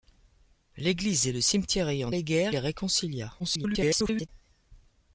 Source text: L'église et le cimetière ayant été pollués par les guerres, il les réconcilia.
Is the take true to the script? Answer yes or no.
no